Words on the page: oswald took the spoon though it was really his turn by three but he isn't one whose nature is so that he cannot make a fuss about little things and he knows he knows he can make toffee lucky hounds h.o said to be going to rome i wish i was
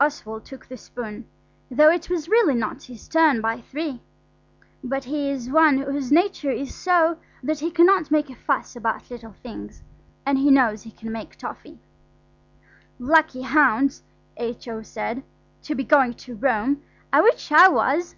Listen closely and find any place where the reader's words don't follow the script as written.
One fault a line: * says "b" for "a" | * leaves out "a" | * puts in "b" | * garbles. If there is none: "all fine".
* puts in "not"
* says "is" for "isn't"
* leaves out "knows he"